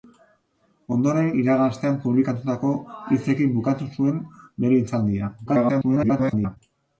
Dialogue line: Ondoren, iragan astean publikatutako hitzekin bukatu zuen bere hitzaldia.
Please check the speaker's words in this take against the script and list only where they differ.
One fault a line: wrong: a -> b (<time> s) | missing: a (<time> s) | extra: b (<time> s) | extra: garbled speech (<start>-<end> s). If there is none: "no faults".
extra: garbled speech (5.5-6.6 s)